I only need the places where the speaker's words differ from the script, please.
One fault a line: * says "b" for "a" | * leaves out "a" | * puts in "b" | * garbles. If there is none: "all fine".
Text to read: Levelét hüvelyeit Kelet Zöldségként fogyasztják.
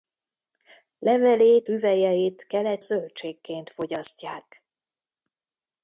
all fine